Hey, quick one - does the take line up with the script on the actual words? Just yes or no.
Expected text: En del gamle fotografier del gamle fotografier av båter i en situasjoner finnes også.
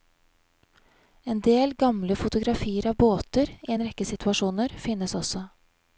no